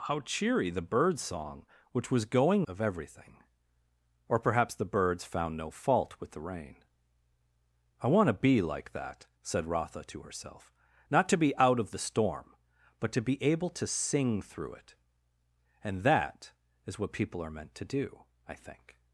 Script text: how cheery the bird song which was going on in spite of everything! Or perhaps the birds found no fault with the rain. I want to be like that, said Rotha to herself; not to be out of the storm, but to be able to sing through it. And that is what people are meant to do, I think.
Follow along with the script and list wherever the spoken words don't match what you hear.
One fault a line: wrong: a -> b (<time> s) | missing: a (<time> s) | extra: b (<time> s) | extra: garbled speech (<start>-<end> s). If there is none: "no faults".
missing: on in spite (2.7 s)